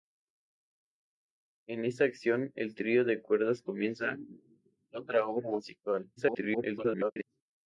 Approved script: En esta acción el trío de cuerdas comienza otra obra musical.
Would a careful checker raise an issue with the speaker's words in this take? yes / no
yes